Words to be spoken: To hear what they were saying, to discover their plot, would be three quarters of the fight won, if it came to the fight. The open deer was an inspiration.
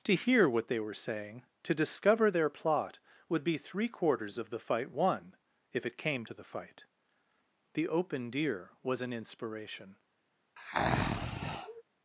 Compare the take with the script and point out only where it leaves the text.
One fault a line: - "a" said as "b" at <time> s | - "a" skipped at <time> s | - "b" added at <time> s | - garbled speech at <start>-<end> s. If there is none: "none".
none